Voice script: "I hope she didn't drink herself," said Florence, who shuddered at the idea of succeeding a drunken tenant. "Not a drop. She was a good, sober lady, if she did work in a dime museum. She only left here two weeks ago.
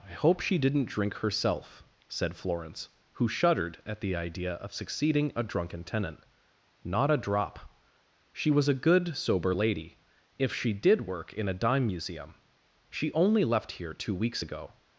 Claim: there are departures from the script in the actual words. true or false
false